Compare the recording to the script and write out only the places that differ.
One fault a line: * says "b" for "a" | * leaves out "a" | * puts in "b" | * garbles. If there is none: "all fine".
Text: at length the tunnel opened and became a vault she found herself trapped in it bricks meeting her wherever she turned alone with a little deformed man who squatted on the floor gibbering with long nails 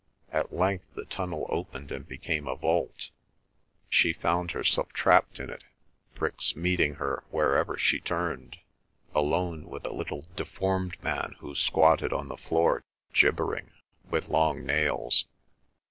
all fine